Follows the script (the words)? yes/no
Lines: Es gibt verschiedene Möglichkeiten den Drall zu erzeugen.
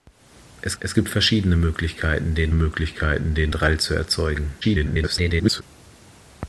no